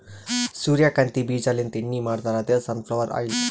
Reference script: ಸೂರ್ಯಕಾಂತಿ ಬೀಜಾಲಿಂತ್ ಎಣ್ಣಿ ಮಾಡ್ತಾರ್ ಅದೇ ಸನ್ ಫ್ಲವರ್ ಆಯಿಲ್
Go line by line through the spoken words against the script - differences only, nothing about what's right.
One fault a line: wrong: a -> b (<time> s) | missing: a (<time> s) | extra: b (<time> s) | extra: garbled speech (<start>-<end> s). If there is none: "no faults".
no faults